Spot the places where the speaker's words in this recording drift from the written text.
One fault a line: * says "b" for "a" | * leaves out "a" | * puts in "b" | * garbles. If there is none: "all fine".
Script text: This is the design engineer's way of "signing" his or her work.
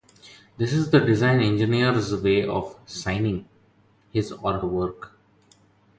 * leaves out "her"